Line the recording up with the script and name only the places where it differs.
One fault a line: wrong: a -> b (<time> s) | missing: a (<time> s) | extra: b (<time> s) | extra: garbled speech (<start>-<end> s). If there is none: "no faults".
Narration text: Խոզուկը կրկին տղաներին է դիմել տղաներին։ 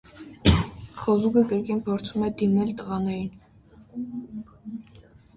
wrong: տղաներին -> փորձում (1.9 s)